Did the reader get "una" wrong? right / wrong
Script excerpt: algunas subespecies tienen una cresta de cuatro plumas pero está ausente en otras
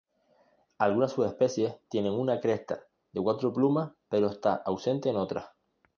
right